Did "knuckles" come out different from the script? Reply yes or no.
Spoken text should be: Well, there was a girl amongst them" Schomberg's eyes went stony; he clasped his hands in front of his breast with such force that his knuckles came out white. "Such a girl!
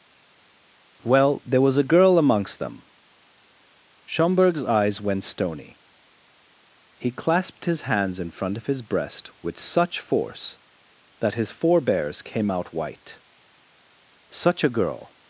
yes